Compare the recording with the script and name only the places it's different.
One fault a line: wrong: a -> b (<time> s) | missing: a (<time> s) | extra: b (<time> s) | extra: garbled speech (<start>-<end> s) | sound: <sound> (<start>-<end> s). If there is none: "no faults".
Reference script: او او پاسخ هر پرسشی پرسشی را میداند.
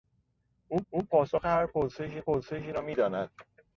no faults